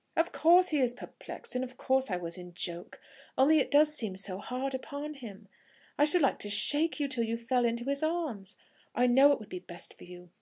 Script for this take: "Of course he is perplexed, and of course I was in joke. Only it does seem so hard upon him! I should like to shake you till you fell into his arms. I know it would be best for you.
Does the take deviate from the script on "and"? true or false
false